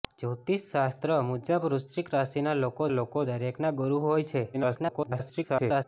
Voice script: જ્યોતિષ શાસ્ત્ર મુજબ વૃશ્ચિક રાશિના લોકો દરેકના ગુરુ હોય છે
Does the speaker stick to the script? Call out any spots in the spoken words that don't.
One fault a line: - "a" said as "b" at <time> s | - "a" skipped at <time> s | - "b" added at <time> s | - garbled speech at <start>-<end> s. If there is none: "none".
- "લોકો" added at 2.9 s
- garbled speech at 4.5-5.8 s